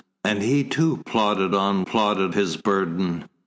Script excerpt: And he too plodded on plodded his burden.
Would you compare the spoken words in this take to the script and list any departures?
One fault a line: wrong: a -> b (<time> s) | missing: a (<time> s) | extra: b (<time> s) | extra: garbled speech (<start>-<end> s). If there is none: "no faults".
no faults